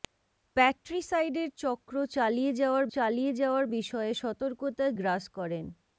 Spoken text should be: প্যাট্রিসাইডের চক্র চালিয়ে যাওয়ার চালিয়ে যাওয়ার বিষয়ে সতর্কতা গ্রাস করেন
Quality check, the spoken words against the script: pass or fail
pass